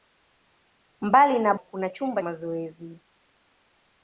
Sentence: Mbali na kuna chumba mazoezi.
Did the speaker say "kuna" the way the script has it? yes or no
yes